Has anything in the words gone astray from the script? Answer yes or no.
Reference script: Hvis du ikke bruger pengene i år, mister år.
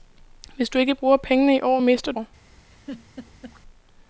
no